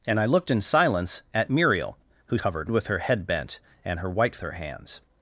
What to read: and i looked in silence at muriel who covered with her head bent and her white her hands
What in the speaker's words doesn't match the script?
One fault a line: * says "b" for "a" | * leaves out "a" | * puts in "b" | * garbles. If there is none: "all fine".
all fine